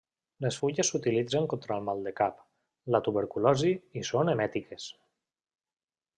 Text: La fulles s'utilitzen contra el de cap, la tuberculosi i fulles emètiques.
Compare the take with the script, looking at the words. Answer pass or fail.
fail